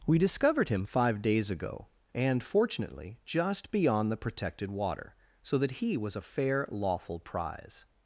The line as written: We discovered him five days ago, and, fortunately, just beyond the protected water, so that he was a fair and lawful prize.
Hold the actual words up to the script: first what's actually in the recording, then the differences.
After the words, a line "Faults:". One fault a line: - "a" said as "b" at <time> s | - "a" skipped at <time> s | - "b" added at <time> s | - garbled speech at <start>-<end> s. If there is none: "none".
We discovered him five days ago, and, fortunately, just beyond the protected water, so that he was a fair lawful prize.
Faults:
- "and" skipped at 6.7 s